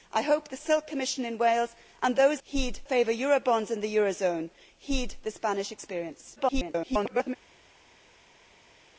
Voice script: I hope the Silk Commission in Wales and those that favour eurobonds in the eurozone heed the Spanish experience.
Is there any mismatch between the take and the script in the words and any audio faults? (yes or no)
yes